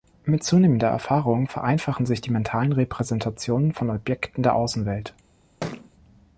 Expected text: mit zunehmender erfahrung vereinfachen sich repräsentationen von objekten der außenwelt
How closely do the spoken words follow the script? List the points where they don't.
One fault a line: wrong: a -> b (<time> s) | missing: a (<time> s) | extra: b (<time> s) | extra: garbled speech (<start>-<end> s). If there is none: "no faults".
extra: die mentalen (2.2 s)